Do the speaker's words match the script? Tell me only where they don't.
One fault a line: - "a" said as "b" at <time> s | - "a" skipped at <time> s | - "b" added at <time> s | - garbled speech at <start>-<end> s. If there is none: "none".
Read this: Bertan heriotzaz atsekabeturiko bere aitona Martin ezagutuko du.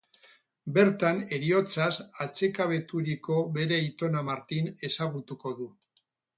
none